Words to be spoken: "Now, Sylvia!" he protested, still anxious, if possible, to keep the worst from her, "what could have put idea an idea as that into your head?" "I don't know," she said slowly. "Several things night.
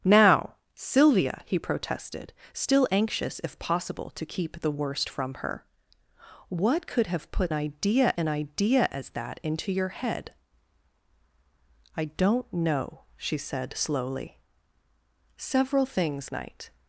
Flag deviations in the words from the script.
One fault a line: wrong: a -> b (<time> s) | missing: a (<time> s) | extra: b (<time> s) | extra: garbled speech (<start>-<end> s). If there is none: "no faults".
no faults